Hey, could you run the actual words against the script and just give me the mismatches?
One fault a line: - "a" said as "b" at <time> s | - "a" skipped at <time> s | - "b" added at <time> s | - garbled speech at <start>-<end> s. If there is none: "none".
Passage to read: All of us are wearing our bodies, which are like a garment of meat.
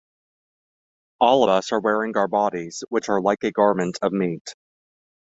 - "of" skipped at 1.4 s